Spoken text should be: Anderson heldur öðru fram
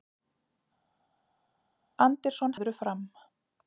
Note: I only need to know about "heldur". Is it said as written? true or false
false